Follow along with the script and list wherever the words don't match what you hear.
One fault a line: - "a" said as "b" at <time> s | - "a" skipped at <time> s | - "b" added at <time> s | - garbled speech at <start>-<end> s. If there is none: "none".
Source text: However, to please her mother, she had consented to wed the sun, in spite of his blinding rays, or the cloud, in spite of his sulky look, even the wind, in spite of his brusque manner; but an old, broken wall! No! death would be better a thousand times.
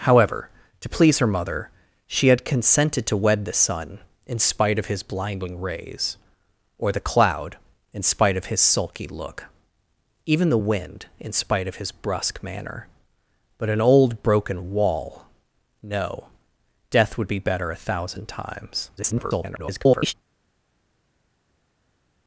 - garbled speech at 19.0-20.1 s